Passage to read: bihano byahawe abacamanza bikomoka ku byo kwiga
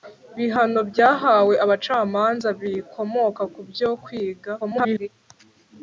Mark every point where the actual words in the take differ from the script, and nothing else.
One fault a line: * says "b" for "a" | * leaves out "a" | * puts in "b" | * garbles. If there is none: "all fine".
* garbles